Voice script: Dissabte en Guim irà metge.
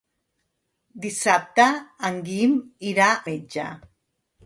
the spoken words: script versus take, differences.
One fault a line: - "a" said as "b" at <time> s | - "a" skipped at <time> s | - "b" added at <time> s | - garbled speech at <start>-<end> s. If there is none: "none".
none